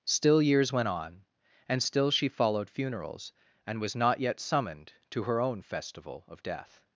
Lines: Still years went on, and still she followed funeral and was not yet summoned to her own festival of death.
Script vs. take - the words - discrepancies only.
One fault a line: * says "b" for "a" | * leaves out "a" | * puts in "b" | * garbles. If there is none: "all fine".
* says "funerals" for "funeral"